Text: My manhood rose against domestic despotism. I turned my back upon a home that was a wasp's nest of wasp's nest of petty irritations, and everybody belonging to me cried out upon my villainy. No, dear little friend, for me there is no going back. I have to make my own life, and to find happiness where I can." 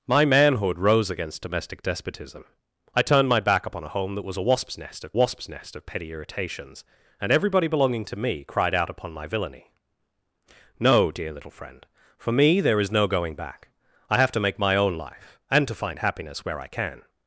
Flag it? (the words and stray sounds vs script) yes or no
no